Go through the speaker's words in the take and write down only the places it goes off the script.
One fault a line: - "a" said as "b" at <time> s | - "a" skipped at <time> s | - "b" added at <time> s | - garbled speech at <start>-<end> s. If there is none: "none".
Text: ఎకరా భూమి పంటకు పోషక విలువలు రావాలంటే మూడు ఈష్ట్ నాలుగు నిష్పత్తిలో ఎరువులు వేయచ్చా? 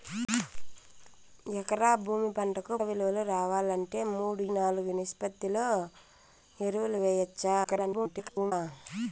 - "పోషక" skipped at 2.7 s
- "ఈష్ట్" skipped at 4.4 s
- garbled speech at 7.6-8.5 s